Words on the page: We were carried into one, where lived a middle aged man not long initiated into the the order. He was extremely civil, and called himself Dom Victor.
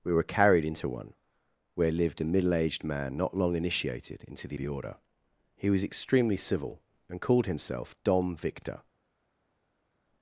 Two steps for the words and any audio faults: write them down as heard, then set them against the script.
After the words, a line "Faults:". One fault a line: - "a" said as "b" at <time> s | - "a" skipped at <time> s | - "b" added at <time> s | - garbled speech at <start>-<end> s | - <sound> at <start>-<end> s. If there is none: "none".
We were carried into one, where lived a middle aged man not long initiated into the the order. He was extremely civil, and called himself Dom Victor.
Faults:
none